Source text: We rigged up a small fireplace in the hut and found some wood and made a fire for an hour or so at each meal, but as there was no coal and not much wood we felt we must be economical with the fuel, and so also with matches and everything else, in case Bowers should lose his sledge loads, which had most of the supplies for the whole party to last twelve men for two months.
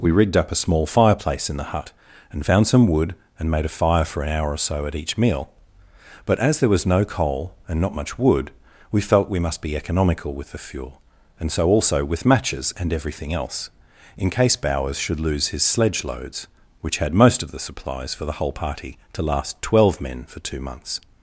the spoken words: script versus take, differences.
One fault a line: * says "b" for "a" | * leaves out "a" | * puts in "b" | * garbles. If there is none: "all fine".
all fine